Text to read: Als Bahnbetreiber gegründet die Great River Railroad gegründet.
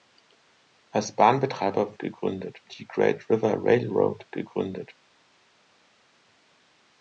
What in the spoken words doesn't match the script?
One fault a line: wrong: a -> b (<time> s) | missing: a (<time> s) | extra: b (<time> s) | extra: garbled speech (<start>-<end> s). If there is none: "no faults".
no faults